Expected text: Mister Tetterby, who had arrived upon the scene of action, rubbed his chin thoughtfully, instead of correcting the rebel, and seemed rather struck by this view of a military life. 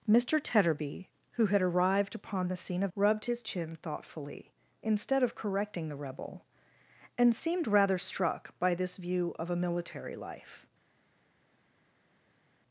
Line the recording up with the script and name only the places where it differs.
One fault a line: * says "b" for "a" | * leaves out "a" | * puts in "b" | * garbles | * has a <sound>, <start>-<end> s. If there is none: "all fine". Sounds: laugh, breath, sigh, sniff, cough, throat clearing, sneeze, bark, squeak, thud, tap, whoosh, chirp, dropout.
* leaves out "action"